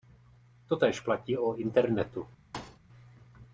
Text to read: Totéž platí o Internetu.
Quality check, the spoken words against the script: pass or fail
pass